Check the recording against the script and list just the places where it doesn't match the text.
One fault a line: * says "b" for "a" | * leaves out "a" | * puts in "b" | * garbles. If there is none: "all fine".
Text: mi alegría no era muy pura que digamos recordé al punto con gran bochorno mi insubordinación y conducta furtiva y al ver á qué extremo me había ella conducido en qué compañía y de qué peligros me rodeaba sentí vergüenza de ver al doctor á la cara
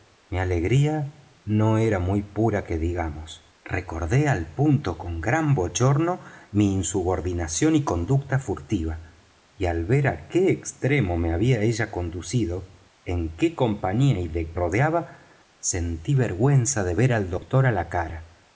* leaves out "qué peligros me"